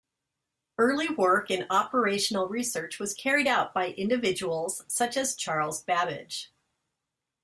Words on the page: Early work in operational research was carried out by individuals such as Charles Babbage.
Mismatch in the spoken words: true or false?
false